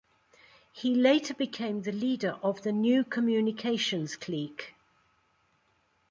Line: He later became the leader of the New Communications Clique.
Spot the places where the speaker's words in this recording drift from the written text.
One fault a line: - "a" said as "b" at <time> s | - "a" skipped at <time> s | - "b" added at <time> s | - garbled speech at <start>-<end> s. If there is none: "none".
none